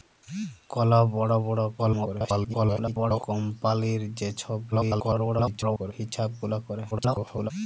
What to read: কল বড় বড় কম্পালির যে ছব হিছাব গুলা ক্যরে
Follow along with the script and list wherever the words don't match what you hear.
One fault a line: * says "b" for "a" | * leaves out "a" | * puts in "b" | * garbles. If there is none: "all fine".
* garbles
* garbles
* garbles